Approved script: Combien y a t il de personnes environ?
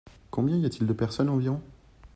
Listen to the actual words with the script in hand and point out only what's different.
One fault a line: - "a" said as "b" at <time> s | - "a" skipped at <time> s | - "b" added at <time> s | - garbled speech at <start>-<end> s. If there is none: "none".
none